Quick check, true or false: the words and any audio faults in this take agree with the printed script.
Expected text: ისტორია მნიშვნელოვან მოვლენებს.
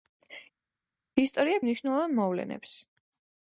true